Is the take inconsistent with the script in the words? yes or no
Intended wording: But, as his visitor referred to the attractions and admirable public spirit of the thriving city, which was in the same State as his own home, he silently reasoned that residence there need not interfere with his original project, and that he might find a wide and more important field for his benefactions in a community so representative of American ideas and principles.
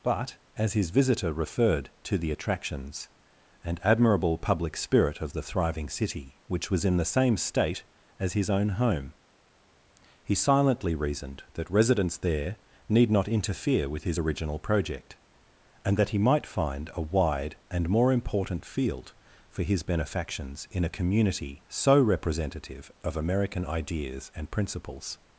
no